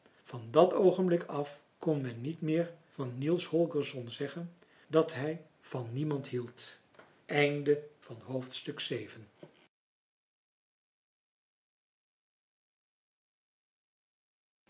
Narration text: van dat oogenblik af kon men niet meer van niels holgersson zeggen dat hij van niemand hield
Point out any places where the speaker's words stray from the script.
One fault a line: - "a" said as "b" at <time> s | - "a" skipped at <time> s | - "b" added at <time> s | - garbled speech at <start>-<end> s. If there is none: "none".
none